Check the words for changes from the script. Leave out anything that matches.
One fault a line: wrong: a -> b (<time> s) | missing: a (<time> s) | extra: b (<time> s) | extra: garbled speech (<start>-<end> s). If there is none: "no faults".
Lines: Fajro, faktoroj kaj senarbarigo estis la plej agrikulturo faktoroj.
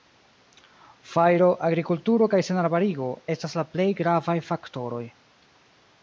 wrong: faktoroj -> agrikulturo (1.7 s)
wrong: estis -> estas (3.3 s)
wrong: agrikulturo -> gravaj (4.0 s)